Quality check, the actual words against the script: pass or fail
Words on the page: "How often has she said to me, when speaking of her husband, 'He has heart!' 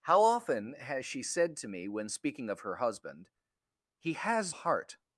pass